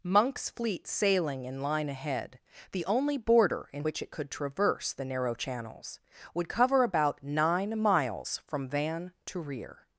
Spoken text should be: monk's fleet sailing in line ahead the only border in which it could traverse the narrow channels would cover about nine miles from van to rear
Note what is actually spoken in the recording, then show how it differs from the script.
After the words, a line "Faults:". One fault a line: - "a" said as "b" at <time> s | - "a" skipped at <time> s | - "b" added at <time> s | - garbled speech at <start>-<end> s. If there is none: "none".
monk's fleet sailing in line ahead the only border in which it could traverse the narrow channels would cover about nine miles from van to rear
Faults:
none